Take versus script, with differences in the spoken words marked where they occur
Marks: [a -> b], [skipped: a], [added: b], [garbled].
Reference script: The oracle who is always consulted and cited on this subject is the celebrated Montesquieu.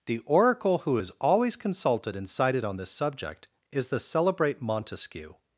The oracle who is always consulted and cited on this subject is the [celebrated -> celebrate] Montesquieu.